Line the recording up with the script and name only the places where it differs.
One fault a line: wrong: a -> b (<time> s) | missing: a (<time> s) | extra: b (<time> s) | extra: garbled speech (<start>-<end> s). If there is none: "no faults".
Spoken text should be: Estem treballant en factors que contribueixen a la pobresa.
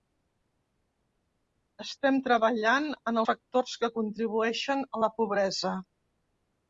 no faults